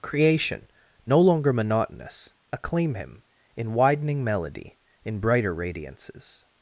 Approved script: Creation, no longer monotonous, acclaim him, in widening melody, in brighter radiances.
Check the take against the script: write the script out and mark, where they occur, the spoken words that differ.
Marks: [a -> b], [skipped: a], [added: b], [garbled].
Creation, no longer monotonous, acclaim him, in widening melody, in brighter radiances.